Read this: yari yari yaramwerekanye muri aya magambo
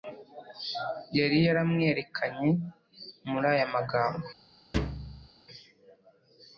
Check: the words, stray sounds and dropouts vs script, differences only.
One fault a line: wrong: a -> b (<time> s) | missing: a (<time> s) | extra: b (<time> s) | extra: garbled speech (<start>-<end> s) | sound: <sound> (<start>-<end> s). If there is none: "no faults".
missing: yari (1.4 s)
sound: thud (4.7-5.3 s)